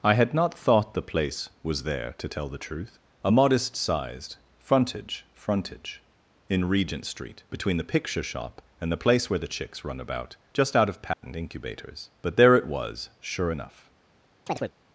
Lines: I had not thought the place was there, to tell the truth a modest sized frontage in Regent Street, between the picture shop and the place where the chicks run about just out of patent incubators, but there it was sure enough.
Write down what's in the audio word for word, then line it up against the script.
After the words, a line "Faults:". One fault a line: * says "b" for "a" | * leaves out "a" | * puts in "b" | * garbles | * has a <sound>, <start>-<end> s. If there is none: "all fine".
I had not thought the place was there, to tell the truth a modest sized frontage frontage in Regent Street, between the picture shop and the place where the chicks run about just out of patent incubators, but there it was sure enough.
Faults:
* puts in "frontage"
* has a dropout, 11.1-11.2 s
* has a chirp, 14.5-14.7 s